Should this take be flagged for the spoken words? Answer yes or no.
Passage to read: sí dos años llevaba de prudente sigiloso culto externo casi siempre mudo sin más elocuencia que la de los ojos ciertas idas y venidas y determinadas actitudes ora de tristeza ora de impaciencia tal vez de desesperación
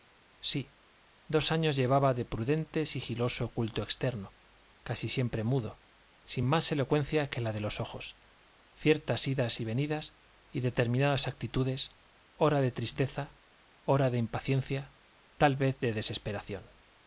no